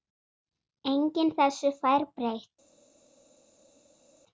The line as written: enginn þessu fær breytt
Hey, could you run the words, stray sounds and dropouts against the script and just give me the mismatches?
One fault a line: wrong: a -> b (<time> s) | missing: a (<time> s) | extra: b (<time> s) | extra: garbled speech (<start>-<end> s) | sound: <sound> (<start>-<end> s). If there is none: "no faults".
no faults